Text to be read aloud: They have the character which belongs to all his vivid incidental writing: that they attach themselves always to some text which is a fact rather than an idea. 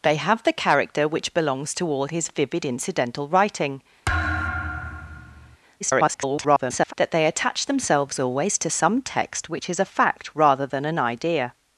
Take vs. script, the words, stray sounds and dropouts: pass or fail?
fail